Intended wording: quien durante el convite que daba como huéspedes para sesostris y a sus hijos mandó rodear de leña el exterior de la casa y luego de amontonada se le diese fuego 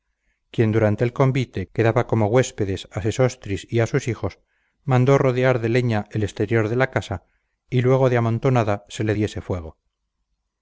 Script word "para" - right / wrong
wrong